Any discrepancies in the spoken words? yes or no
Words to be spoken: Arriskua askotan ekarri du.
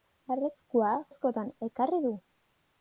no